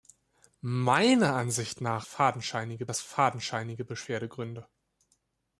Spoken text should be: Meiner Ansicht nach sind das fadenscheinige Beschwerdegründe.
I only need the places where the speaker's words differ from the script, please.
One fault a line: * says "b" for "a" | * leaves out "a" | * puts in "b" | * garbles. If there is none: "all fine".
* says "fadenscheinige" for "sind"